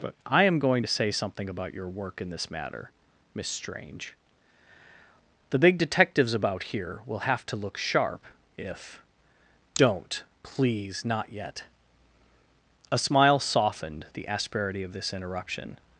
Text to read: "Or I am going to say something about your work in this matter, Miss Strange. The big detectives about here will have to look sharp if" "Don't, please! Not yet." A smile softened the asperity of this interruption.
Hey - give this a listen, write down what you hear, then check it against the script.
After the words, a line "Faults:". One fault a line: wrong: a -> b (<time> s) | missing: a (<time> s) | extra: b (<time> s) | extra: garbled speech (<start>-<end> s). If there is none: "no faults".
"But I am going to say something about your work in this matter, Miss Strange. The big detectives about here will have to look sharp if" "Don't, please! Not yet." A smile softened the asperity of this interruption.
Faults:
wrong: Or -> But (0.0 s)